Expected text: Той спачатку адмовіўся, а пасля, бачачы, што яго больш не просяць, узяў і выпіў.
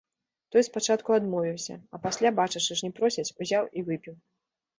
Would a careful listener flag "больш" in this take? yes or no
yes